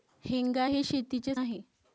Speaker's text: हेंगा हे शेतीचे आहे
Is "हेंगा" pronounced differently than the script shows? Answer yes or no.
no